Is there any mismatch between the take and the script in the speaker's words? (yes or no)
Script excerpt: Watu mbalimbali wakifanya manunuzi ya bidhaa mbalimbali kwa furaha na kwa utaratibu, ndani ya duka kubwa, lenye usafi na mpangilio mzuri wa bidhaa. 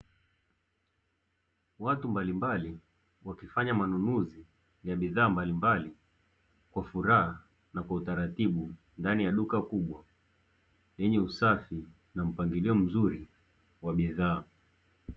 no